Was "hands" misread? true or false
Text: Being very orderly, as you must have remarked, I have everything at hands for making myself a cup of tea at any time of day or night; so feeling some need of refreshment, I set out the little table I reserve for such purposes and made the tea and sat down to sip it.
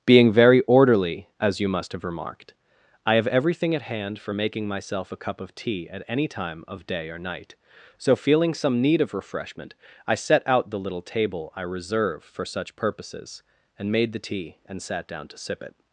true